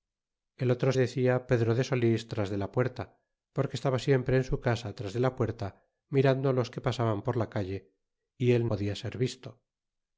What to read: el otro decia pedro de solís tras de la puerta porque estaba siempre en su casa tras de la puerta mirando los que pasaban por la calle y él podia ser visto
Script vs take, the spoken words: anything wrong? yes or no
no